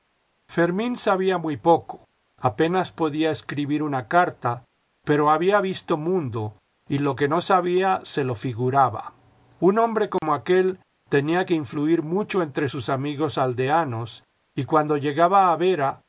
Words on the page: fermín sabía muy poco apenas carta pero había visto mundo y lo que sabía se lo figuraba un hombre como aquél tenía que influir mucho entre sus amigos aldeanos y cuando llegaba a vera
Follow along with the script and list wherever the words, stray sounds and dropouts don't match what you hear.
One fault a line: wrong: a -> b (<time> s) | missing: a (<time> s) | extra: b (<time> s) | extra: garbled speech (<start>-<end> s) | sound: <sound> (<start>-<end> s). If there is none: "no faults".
extra: podía escribir una (2.9 s)
extra: no (7.3 s)
sound: dropout (10.2-10.2 s)